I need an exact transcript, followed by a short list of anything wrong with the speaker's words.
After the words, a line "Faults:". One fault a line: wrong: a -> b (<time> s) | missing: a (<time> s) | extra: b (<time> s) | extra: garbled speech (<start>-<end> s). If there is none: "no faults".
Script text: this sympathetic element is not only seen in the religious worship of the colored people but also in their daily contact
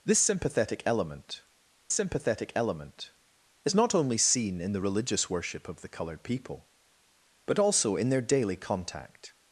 this sympathetic element sympathetic element is not only seen in the religious worship of the colored people but also in their daily contact
Faults:
extra: sympathetic element (1.9 s)